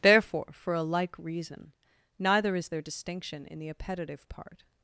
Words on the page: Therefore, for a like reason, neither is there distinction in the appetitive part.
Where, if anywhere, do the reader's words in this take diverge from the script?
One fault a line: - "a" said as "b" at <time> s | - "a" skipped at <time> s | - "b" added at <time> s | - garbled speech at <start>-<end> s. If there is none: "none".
none